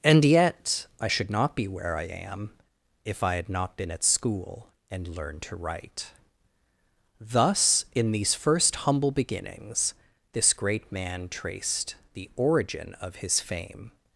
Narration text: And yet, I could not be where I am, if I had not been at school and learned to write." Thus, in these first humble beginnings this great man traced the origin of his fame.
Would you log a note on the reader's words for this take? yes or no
yes